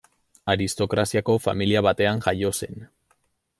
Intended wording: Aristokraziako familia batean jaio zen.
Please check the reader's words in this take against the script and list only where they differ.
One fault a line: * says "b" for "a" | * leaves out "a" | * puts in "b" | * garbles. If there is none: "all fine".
all fine